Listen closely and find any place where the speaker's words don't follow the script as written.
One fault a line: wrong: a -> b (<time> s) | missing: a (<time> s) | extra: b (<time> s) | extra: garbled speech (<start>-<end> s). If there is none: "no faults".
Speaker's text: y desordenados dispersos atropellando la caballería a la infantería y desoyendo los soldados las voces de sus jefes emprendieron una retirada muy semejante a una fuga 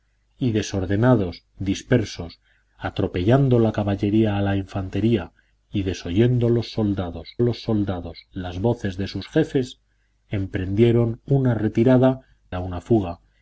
extra: los soldados (7.4 s)
missing: muy semejante (12.2 s)